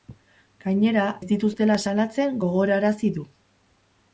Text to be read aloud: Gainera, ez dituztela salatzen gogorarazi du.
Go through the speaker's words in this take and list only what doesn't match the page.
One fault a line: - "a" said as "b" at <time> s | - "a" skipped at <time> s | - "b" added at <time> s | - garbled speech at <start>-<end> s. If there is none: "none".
none